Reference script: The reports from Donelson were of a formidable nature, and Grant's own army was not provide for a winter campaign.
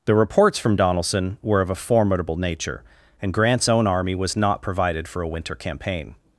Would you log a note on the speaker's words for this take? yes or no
yes